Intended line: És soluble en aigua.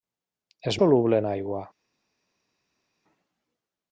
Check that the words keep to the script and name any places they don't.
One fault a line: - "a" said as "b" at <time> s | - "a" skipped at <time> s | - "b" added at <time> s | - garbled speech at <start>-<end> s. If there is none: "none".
none